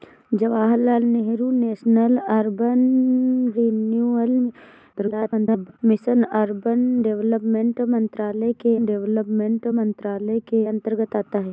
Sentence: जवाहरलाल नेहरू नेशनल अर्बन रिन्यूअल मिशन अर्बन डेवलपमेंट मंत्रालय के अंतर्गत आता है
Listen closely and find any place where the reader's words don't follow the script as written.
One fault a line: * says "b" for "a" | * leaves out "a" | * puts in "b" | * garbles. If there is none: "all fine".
* garbles
* puts in "डेवलपमेंट मंत्रालय के"